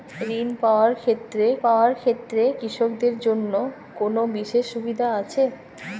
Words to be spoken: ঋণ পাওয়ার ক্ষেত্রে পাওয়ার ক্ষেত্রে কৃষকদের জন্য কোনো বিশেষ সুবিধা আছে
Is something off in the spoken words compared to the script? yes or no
no